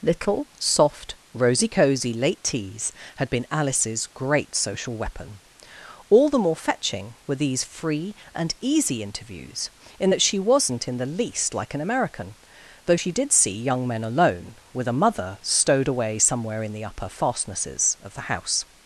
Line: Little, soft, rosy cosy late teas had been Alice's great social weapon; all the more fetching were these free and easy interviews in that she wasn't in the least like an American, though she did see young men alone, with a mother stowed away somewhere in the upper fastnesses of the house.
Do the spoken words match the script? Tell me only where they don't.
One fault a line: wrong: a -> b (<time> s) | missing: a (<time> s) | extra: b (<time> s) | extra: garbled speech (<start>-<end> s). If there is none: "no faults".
no faults